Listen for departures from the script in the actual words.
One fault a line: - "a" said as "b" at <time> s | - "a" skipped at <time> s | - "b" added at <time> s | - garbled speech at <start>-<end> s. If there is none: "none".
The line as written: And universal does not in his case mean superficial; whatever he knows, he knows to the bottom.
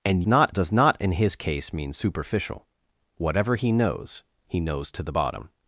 - "universal" said as "not" at 0.2 s